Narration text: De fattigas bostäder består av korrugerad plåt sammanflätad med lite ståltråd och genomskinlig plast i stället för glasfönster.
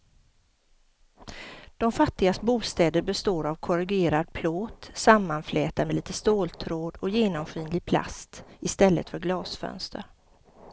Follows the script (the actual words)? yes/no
yes